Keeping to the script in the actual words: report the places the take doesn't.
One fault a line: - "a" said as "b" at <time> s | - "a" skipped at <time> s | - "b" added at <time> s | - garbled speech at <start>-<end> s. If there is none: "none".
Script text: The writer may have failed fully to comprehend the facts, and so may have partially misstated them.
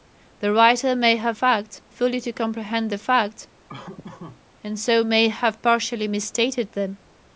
- "failed" said as "facts" at 1.3 s